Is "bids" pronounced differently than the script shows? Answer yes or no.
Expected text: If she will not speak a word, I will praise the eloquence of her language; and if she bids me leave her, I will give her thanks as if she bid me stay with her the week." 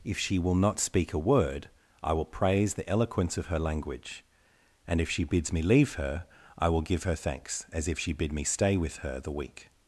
no